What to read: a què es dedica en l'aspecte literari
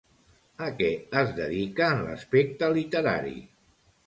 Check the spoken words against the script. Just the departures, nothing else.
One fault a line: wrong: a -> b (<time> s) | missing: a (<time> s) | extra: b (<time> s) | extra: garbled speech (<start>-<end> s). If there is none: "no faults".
no faults